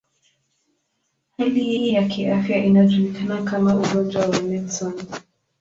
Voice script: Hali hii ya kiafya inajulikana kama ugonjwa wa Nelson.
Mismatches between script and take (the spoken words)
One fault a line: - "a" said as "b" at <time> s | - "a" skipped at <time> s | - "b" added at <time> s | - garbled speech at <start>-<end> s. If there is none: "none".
- "hii" added at 1.8 s